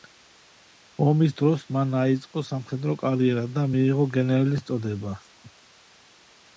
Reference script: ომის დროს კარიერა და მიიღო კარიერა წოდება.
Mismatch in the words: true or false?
true